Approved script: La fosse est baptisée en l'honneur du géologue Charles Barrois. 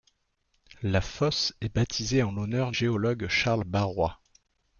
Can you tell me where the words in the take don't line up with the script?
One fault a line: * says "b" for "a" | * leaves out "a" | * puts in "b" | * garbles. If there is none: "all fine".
* leaves out "du"